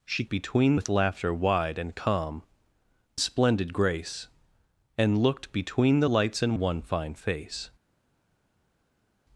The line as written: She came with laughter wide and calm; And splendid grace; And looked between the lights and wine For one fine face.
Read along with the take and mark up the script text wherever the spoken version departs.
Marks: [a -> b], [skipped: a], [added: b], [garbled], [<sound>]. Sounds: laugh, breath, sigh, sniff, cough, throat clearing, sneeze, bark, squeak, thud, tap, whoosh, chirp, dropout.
She [came -> between] with laughter wide and calm; [skipped: And] splendid grace; And looked between the lights and [skipped: wine For] one fine face.